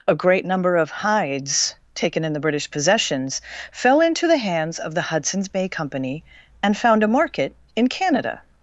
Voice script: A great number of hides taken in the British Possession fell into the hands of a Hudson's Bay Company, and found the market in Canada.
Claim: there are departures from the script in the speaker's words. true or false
true